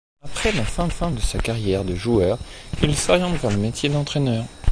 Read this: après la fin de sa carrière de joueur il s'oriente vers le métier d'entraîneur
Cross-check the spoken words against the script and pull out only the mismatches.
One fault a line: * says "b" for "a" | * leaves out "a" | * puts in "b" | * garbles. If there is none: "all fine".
* puts in "fin"